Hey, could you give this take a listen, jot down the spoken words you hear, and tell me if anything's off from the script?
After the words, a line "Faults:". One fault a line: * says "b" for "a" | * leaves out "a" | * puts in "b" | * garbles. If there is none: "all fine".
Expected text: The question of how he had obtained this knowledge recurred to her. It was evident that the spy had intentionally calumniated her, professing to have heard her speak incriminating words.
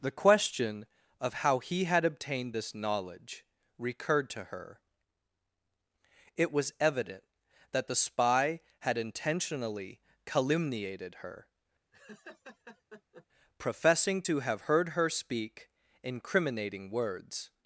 The question of how he had obtained this knowledge recurred to her. It was evident that the spy had intentionally calumniated her, professing to have heard her speak incriminating words.
Faults:
all fine